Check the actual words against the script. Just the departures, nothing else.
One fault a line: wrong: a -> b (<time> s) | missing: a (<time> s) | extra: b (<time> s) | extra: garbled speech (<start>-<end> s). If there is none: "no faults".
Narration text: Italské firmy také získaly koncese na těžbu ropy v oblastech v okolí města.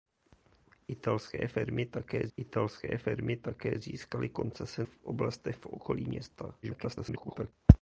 wrong: získaly koncese na těžbu ropy -> italské firmy také získaly koncese (2.4 s)
extra: garbled speech (6.6-7.5 s)